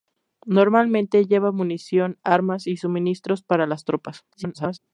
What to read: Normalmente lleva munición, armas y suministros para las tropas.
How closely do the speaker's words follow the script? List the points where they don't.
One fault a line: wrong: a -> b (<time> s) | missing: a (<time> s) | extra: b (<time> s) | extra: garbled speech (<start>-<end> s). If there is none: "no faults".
extra: garbled speech (4.3-4.8 s)